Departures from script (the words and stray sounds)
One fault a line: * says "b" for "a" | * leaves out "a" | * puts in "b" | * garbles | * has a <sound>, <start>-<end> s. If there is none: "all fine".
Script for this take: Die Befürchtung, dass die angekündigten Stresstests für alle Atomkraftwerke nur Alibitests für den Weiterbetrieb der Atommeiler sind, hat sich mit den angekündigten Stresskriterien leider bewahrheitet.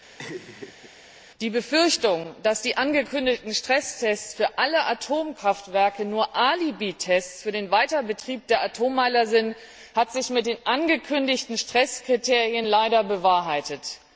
* has a laugh, 0.2-0.9 s